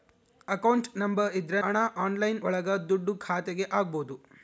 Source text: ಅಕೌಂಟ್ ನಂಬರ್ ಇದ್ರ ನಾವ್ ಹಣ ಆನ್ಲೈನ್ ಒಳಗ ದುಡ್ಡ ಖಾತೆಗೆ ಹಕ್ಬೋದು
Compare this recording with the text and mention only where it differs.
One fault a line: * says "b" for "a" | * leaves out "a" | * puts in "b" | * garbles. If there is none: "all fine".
* leaves out "ನಾವ್"